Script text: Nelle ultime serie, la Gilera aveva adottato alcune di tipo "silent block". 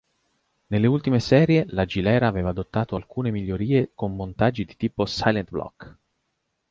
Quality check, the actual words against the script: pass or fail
fail